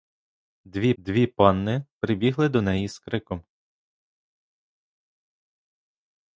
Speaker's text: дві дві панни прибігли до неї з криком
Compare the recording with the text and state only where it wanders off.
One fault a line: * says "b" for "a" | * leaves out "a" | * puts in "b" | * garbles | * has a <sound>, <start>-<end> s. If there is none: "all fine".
all fine